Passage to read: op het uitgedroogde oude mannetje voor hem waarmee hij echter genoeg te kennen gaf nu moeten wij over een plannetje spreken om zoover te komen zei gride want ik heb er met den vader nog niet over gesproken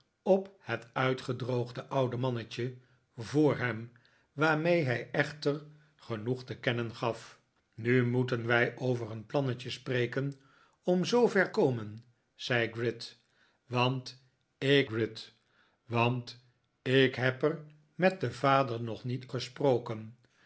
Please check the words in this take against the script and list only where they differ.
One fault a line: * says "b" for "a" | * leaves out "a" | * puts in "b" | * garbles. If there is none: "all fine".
* leaves out "te"
* puts in "gride want ik"
* leaves out "over"